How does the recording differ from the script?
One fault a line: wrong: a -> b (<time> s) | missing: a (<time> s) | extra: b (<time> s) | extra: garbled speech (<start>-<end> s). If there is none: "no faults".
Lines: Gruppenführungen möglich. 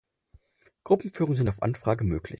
extra: sind auf Anfrage (1.4 s)